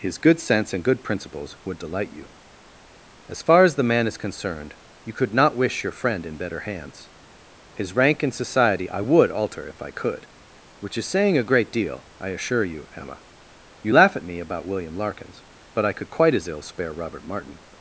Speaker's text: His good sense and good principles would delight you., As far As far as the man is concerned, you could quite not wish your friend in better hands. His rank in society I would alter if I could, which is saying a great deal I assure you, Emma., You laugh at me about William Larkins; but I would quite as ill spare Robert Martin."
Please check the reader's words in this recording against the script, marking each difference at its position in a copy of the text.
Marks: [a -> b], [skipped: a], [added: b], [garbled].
His good sense and good principles would delight you., As far As [skipped: far as] the man is concerned, you could [skipped: quite] not wish your friend in better hands. His rank in society I would alter if I could, which is saying a great deal I assure you, Emma., You laugh at me about William Larkins; but I [would -> could] quite as ill spare Robert Martin."